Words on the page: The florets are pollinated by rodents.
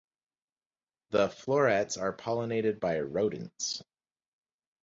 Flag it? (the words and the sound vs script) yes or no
no